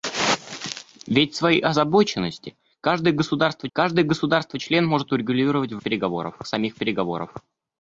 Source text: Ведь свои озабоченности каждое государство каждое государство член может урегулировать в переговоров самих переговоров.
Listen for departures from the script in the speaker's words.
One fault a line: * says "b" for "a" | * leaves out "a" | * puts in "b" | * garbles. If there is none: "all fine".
all fine